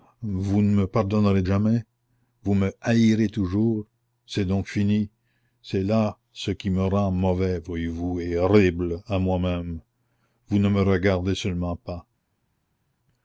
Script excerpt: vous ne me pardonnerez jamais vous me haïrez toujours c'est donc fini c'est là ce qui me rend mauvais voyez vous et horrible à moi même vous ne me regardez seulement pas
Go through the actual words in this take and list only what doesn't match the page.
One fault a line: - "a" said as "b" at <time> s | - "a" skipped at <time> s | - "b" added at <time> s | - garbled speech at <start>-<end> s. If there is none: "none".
none